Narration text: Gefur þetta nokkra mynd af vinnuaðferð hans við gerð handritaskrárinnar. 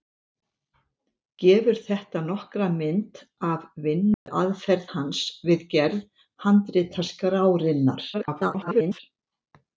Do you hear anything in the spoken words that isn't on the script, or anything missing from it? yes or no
yes